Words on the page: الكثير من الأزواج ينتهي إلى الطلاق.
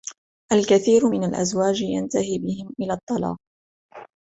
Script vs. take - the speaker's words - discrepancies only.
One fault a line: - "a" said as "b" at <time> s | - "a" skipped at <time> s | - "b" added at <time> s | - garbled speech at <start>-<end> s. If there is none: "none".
- "بهم" added at 2.4 s